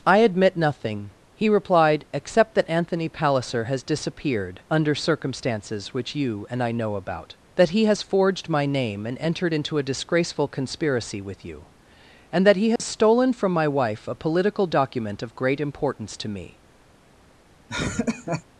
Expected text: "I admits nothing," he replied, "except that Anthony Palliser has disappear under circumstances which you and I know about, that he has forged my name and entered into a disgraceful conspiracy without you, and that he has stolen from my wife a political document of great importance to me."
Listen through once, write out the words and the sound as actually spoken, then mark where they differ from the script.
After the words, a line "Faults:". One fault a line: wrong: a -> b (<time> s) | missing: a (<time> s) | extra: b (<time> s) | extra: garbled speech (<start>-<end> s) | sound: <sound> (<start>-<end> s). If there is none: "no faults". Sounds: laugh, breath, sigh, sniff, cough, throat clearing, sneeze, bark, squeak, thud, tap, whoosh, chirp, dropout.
"I admit nothing," he replied, "except that Anthony Palliser has disappeared under circumstances which you and I know about, that he has forged my name and entered into a disgraceful conspiracy with you, and that he has stolen from my wife a political document of great importance to me."
Faults:
wrong: admits -> admit (0.2 s)
wrong: disappear -> disappeared (3.8 s)
wrong: without -> with (11.2 s)
sound: dropout (12.8-12.8 s)
sound: laugh (17.7-18.4 s)